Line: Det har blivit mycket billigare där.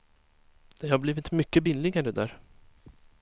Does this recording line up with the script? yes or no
yes